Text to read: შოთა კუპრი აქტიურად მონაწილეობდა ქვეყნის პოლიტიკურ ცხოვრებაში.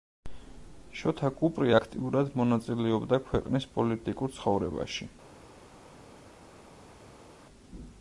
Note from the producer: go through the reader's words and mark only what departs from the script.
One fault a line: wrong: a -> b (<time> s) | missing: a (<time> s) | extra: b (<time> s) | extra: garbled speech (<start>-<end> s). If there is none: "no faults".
no faults